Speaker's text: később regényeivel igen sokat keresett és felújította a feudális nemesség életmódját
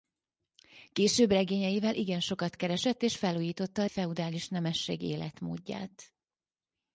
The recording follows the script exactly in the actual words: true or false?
true